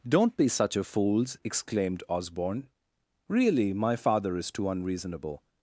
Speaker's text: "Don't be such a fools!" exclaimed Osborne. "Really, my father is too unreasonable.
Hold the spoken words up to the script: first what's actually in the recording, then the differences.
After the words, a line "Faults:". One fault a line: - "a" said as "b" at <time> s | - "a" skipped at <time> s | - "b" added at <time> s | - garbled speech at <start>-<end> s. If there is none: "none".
"Don't be such a fools!" exclaimed Osborne. "Really, my father is too unreasonable.
Faults:
none